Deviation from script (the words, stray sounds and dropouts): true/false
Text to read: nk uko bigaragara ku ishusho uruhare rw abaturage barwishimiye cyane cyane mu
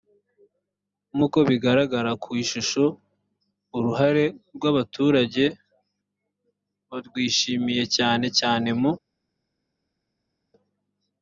false